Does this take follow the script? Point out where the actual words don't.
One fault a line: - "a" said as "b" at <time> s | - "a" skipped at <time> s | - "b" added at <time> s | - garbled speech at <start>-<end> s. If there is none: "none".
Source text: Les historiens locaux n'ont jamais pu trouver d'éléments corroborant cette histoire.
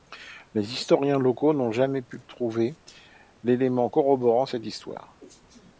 none